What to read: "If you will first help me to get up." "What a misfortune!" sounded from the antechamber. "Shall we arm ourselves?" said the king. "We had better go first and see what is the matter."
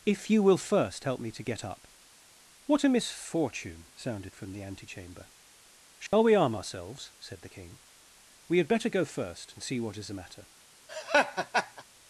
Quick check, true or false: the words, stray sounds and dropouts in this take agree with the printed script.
false